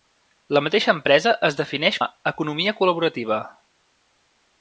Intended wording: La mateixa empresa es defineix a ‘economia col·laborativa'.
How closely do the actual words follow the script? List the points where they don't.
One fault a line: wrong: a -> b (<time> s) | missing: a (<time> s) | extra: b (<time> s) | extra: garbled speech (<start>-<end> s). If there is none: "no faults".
no faults